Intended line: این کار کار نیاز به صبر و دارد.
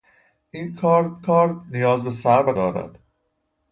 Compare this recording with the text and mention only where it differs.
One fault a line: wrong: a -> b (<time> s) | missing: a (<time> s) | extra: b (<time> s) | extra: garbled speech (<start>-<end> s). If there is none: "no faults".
no faults